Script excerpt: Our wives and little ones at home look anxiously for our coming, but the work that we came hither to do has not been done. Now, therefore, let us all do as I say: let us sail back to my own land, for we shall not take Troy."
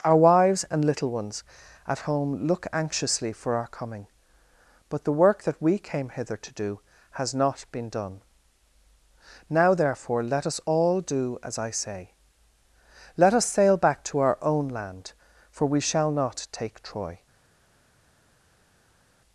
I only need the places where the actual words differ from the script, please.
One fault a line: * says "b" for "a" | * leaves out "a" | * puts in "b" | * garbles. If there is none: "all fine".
* says "our" for "my"